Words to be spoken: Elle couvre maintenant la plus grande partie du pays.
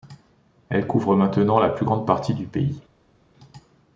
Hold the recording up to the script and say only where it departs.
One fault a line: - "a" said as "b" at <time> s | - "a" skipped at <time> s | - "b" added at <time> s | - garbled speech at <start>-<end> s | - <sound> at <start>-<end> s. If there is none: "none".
none